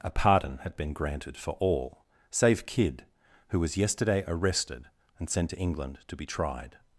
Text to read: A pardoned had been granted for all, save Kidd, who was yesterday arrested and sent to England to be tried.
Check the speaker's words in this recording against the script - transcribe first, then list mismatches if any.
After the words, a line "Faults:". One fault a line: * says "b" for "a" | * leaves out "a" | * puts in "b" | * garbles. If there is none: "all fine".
A pardon had been granted for all, save Kidd, who was yesterday arrested and sent to England to be tried.
Faults:
* says "pardon" for "pardoned"